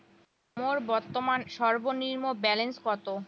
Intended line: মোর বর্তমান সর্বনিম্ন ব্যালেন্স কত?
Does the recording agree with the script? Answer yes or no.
yes